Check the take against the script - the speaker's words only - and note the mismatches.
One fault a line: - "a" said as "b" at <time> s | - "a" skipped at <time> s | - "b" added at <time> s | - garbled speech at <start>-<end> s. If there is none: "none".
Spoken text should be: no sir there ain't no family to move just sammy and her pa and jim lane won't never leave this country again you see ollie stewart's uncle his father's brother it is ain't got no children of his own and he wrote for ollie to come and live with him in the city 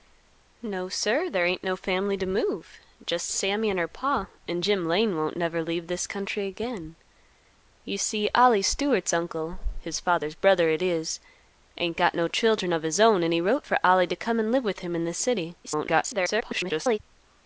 - garbled speech at 15.6-17.0 s